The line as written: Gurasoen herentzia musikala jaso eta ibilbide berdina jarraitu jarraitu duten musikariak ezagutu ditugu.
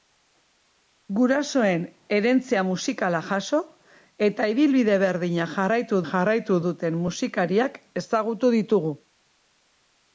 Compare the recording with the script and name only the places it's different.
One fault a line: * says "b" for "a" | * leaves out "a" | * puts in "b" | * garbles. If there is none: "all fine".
all fine